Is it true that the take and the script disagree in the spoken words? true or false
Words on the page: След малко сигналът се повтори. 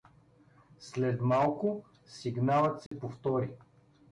false